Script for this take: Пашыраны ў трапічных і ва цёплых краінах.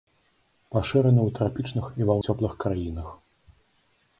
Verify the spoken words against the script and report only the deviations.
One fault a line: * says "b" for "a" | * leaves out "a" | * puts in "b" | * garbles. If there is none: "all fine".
all fine